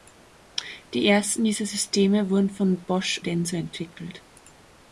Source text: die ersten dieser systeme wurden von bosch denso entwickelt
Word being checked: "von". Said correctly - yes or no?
yes